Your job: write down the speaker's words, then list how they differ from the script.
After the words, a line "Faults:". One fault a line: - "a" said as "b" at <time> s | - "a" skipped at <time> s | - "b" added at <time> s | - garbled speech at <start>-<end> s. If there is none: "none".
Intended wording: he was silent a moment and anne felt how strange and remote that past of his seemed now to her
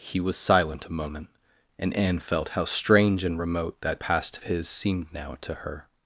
he was silent a moment and anne felt how strange and remote that past of his seemed now to her
Faults:
none